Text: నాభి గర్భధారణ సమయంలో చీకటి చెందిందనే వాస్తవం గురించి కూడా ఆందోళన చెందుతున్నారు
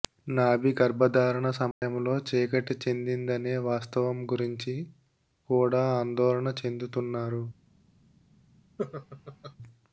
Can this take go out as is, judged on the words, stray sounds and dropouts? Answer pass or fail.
fail